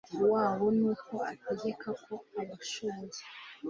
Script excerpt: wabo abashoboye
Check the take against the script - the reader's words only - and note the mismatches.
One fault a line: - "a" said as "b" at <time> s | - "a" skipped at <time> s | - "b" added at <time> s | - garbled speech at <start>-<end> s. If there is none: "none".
- "nuko ategeka ko" added at 0.8 s